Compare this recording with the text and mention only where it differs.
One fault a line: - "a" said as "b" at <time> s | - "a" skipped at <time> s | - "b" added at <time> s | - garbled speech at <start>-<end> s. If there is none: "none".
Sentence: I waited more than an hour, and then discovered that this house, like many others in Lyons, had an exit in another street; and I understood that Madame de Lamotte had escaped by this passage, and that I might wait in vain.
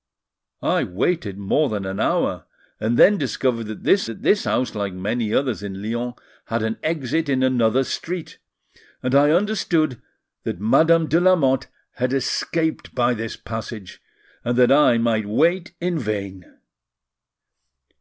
- "that this" added at 4.1 s